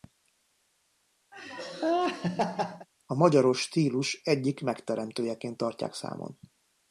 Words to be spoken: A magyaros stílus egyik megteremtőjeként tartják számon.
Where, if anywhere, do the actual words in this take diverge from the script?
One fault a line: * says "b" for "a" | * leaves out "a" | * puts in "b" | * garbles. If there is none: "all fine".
all fine